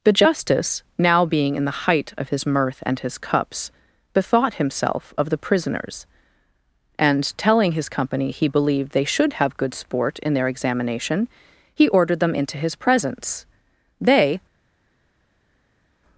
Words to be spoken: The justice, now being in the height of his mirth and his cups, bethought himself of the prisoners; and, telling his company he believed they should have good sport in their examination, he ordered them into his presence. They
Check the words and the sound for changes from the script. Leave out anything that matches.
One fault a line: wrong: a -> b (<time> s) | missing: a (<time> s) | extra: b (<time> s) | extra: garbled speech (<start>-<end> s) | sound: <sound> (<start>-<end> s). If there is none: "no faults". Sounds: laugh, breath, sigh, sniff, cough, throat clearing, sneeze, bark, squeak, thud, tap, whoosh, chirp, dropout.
no faults